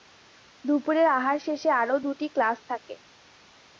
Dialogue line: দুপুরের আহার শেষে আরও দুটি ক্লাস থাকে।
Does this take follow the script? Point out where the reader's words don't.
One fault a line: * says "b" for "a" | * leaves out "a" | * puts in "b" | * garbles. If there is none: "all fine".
all fine